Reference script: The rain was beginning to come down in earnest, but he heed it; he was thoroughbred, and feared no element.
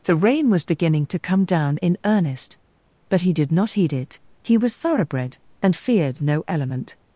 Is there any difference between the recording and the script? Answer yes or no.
yes